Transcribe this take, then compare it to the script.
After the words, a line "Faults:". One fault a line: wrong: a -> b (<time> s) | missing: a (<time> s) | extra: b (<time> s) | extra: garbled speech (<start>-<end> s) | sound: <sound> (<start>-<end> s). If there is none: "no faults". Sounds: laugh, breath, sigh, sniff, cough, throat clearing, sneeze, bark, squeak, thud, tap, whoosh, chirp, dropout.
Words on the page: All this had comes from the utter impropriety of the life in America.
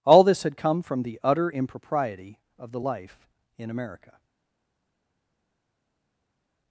All this had come from the utter impropriety of the life in America.
Faults:
wrong: comes -> come (0.6 s)